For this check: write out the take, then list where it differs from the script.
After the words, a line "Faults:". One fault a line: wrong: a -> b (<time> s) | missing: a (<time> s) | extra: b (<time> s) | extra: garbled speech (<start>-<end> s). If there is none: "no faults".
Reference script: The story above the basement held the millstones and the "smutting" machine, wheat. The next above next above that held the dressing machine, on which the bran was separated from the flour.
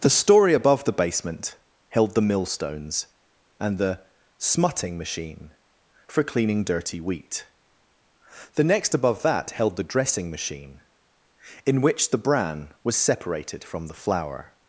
The story above the basement held the millstones and the "smutting" machine, for cleaning dirty wheat. The next above that held the dressing machine, in which the bran was separated from the flour.
Faults:
extra: for cleaning dirty (6.1 s)
missing: next above (9.2 s)
wrong: on -> in (11.7 s)